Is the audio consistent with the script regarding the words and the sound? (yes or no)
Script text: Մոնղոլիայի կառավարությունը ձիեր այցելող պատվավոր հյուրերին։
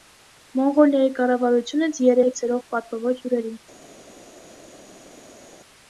yes